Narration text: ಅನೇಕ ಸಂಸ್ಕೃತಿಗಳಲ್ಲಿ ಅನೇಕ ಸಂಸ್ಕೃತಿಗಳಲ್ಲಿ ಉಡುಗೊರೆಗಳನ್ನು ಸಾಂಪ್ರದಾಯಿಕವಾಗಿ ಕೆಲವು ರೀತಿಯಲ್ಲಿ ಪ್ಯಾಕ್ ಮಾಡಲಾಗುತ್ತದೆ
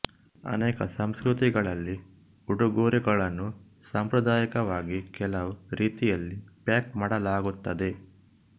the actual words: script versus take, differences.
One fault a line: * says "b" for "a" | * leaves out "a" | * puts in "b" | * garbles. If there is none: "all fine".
* leaves out "ಅನೇಕ ಸಂಸ್ಕೃತಿಗಳಲ್ಲಿ"